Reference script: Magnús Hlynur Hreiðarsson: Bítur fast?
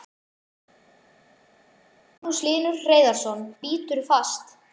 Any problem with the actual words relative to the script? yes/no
no